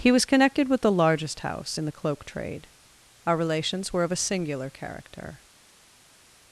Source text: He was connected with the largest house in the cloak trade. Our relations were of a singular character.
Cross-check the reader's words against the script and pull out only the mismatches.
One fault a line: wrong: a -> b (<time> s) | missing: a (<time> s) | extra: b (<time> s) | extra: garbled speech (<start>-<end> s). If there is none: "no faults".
no faults